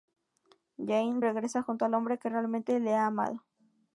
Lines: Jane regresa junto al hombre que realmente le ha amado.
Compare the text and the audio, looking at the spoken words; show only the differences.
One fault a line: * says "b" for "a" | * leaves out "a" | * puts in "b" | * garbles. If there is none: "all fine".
all fine